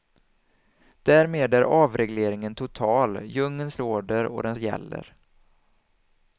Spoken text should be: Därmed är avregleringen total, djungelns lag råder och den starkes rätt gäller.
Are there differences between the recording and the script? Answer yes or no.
yes